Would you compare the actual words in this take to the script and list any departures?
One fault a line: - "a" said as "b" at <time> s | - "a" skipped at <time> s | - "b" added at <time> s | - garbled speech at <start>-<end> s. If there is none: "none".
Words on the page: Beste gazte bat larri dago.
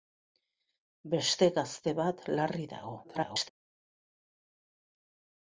- garbled speech at 3.0-3.5 s